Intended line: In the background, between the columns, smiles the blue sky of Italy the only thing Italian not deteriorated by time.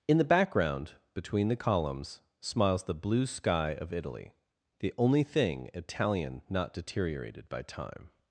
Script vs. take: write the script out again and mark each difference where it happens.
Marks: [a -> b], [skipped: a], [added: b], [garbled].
In the background, between the columns, smiles the blue sky of Italy the only thing Italian not deteriorated by time.